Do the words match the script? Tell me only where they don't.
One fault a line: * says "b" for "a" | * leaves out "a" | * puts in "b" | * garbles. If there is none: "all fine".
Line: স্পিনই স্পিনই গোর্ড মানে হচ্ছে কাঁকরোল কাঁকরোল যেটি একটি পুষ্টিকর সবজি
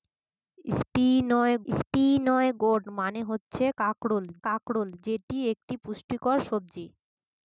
all fine